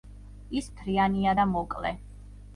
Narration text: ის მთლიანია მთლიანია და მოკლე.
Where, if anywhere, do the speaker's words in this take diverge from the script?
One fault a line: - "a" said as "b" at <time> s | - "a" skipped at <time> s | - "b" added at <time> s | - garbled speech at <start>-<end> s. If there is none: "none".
- "მთლიანია" skipped at 1.3 s